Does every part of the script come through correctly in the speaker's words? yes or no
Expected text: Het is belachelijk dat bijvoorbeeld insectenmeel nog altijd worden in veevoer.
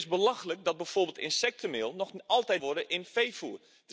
yes